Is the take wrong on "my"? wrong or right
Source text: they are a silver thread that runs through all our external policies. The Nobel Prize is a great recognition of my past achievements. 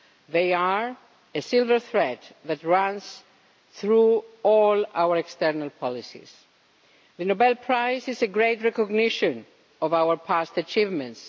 wrong